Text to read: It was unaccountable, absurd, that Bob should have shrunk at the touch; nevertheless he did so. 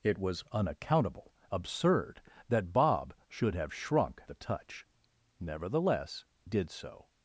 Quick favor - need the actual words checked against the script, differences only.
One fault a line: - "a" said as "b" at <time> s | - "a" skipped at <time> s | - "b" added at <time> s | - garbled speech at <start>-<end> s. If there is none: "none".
- "at" skipped at 4.2 s
- "he" skipped at 6.3 s